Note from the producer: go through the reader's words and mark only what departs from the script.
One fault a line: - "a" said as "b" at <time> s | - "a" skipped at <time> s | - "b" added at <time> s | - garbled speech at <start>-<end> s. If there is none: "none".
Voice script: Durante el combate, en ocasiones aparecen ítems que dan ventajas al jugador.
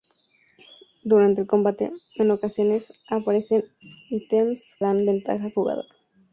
- "que" skipped at 4.8 s
- "al" skipped at 5.6 s